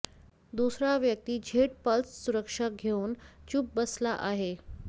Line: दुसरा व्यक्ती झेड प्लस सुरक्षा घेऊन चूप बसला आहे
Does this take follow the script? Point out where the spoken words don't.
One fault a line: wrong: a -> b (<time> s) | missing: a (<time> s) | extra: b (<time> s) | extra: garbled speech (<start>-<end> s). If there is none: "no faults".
no faults